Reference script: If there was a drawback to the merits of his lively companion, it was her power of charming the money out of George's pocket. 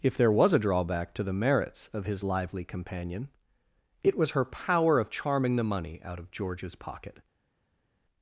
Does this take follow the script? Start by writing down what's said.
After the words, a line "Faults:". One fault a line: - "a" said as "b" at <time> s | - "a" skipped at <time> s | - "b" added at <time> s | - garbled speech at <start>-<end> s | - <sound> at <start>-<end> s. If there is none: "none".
If there was a drawback to the merits of his lively companion, it was her power of charming the money out of George's pocket.
Faults:
none